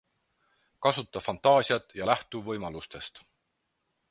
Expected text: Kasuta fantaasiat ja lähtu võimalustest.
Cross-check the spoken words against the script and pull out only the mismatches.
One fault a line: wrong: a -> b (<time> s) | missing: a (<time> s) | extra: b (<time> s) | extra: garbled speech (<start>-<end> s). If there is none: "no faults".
no faults